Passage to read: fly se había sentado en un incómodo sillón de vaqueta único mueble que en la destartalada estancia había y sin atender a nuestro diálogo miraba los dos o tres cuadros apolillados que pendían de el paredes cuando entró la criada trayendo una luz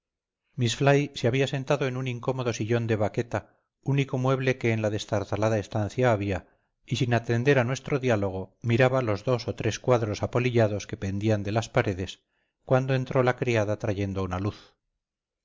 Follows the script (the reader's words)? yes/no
no